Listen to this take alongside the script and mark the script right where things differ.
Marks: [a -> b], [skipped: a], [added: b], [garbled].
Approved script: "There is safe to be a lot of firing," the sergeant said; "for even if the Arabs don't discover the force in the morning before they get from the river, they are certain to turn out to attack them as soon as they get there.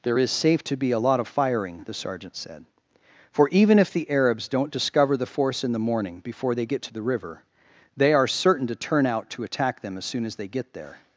"There is safe to be a lot of firing," the sergeant said; "for even if the Arabs don't discover the force in the morning before they get [from -> to] the river, they are certain to turn out to attack them as soon as they get there.